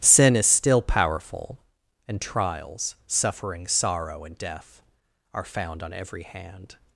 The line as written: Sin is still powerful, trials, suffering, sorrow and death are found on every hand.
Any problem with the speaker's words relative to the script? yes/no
yes